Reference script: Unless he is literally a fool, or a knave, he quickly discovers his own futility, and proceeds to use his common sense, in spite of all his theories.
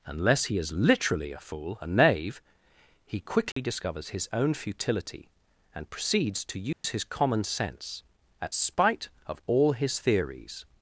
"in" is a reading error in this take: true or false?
true